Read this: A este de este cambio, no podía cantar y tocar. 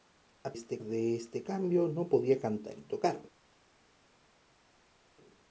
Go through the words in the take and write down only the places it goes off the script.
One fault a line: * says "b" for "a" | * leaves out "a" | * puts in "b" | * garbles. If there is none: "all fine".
all fine